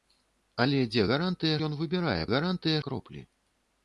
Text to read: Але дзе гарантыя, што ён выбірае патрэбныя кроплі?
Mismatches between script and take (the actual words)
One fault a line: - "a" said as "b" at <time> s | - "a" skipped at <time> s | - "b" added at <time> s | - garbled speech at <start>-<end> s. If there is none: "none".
- "што" skipped at 1.6 s
- "патрэбныя" said as "гарантыя" at 2.3 s